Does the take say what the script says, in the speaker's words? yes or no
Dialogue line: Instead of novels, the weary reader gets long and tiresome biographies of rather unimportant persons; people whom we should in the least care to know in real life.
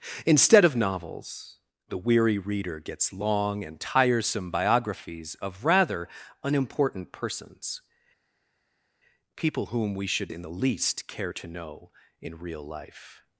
yes